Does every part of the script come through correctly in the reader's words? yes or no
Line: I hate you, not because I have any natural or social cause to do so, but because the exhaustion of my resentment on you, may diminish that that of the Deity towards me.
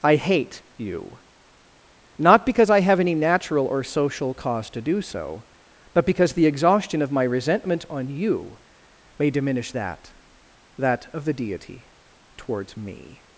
yes